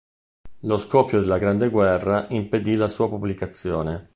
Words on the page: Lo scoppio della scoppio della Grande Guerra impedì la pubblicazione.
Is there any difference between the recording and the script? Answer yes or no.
yes